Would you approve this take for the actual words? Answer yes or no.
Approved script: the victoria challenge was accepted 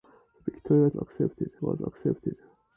no